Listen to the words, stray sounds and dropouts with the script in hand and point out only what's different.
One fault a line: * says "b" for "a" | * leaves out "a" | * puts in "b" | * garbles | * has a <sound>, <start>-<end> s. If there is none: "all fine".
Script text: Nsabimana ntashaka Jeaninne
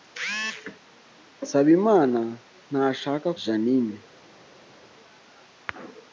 all fine